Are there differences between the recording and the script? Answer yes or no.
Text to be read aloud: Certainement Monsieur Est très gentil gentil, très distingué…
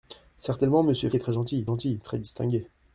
no